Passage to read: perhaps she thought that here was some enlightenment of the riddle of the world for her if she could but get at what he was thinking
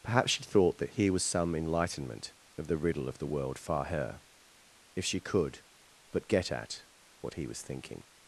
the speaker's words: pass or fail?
fail